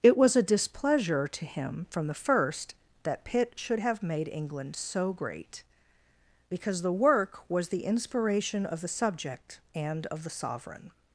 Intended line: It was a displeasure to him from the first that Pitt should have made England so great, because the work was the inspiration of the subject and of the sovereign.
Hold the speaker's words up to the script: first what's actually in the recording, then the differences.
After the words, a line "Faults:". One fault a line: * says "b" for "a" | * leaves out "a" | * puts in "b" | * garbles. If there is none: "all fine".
It was a displeasure to him from the first that Pitt should have made England so great, because the work was the inspiration of the subject and of the sovereign.
Faults:
all fine